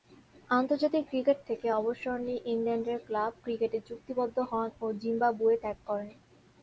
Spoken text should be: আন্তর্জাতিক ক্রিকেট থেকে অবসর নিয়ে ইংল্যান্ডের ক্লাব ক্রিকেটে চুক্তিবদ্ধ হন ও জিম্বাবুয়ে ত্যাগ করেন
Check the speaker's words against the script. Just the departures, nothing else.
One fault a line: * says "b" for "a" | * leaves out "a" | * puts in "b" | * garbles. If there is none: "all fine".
all fine